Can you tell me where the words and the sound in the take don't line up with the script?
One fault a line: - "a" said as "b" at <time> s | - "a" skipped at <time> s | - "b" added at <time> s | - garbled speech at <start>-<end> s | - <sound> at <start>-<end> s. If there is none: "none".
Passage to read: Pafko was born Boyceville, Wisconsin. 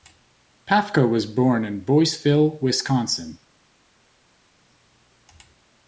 - "in" added at 1.6 s